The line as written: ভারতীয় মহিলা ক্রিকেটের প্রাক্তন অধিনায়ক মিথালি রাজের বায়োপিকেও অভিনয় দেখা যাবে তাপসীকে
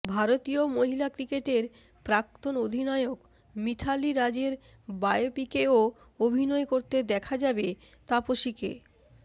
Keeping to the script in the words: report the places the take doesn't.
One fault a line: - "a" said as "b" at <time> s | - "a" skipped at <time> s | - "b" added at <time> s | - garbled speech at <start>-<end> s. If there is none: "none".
- "করতে" added at 6.6 s